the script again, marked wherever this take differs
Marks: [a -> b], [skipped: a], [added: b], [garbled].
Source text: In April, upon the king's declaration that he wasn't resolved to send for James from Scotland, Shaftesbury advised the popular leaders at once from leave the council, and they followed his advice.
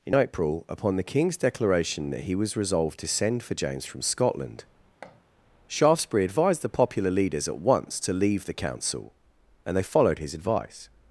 In April, upon the king's declaration that he [wasn't -> was] resolved to send for James from Scotland, Shaftesbury advised the popular leaders at once [from -> to] leave the council, and they followed his advice.